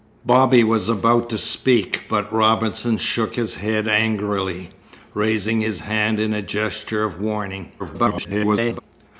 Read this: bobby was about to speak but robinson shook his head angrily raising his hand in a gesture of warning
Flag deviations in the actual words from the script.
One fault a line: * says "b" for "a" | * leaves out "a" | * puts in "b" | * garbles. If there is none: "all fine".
* garbles